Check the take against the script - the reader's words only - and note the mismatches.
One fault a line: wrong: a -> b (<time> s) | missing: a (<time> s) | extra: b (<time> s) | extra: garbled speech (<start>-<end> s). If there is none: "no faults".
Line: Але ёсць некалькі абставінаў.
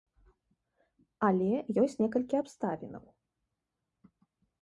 no faults